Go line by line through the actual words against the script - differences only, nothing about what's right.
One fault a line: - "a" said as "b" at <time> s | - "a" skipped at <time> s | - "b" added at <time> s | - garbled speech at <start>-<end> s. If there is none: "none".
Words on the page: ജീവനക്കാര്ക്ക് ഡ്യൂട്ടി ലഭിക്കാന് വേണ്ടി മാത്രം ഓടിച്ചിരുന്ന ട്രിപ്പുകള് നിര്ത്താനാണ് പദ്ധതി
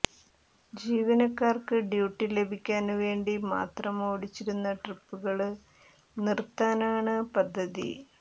none